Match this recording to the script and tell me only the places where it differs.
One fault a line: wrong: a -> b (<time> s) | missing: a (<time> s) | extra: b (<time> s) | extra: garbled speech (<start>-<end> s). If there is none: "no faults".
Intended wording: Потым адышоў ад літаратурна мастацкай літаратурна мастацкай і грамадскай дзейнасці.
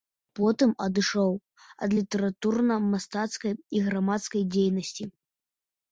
missing: літаратурна мастацкай (3.5 s)